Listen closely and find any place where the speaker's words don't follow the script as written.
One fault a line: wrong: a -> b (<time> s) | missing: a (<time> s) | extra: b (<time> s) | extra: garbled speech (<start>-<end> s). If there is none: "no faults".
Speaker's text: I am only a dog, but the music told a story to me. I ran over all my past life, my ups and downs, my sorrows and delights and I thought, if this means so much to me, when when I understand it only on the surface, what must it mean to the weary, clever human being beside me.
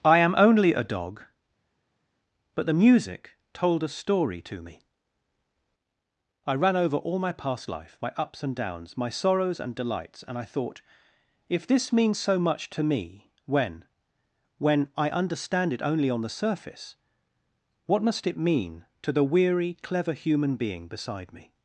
no faults